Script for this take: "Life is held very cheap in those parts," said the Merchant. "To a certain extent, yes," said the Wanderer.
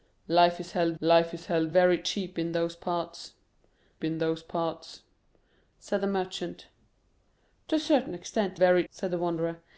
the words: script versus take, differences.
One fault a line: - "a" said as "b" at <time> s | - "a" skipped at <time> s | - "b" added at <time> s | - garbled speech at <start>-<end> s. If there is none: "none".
- "life is held" added at 1.0 s
- "in those parts" added at 4.0 s
- "yes" said as "very" at 8.6 s